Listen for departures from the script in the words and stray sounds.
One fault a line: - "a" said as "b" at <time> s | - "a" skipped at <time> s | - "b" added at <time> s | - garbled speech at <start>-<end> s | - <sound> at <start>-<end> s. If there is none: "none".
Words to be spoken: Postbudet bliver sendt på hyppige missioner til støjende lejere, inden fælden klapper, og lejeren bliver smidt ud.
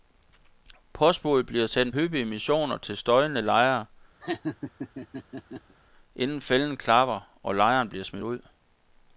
- "på" skipped at 1.9 s
- laugh at 4.2-5.8 s